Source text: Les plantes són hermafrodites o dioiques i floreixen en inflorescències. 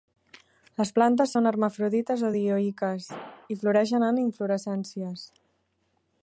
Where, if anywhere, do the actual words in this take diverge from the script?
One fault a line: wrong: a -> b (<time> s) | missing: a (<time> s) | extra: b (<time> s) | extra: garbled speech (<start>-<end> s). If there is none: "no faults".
no faults